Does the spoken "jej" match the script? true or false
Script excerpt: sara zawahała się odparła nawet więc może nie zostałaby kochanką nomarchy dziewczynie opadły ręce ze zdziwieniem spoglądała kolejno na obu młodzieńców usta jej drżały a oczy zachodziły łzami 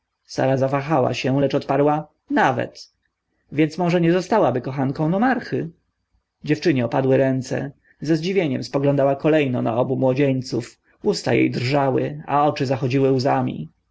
true